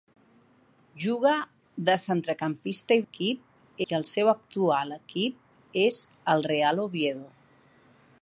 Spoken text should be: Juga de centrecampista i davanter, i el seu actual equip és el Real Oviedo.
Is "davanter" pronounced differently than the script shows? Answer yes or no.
yes